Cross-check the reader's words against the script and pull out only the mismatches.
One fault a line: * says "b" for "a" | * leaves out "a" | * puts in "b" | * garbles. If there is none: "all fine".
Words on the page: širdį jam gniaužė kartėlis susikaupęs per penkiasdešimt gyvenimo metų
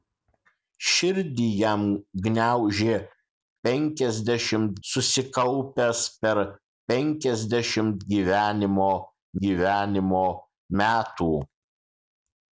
* says "penkiasdešimt" for "kartėlis"
* puts in "gyvenimo"